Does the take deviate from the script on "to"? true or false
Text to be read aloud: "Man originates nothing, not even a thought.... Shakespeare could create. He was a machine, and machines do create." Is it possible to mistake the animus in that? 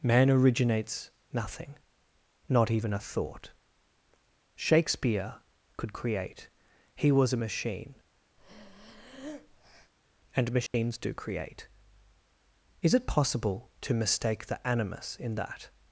false